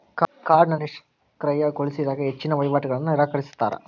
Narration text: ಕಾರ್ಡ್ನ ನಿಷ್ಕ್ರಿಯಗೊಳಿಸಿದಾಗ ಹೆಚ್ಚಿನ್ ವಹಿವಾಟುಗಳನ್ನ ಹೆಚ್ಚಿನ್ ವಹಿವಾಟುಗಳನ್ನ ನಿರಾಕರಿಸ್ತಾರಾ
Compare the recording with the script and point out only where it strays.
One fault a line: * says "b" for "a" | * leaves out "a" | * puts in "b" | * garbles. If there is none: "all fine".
* leaves out "ಹೆಚ್ಚಿನ್ ವಹಿವಾಟುಗಳನ್ನ"